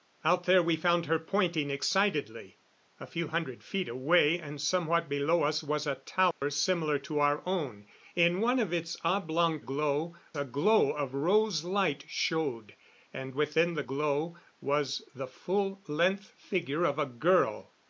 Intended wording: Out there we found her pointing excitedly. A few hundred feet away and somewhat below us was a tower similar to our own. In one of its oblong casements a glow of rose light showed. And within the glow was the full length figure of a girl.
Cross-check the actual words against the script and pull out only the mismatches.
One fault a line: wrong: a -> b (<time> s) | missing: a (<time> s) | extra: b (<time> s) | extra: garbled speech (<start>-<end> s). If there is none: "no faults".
wrong: casements -> glow (9.6 s)